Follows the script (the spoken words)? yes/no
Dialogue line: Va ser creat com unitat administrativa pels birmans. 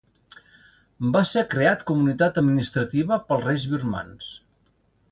no